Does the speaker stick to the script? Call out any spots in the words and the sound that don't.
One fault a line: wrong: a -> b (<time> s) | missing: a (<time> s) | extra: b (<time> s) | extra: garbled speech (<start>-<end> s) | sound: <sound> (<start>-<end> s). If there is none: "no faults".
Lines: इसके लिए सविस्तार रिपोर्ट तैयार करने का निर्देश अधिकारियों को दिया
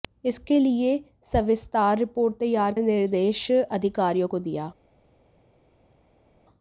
missing: करने का (2.7 s)